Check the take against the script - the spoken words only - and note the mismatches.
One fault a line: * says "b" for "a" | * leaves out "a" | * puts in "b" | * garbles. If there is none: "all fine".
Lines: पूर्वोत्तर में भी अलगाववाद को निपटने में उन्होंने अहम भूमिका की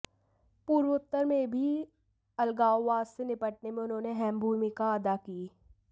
* says "से" for "को"
* puts in "अदा"